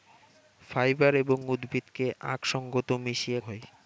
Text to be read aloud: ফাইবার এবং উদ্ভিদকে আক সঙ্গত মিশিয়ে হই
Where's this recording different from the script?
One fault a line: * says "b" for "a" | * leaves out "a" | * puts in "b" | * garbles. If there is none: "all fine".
all fine